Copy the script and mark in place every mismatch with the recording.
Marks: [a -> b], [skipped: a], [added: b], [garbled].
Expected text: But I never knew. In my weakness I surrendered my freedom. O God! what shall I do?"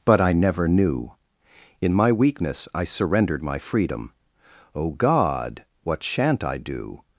But I never knew. In my weakness I surrendered my freedom. O God! what [shall -> shan't] I do?"